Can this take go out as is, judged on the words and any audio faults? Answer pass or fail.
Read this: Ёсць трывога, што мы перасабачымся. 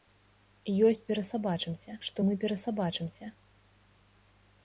fail